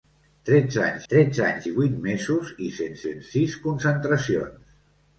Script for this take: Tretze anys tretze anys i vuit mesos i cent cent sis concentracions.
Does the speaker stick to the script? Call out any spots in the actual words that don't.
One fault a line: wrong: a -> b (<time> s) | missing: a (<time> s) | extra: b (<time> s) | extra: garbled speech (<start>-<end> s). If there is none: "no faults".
no faults